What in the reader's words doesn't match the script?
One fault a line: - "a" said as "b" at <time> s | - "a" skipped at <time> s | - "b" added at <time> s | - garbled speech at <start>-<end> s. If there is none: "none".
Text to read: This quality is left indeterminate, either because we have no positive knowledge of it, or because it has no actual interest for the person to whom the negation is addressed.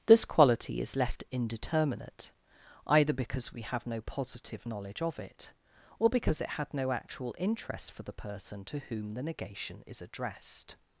- "has" said as "had" at 6.5 s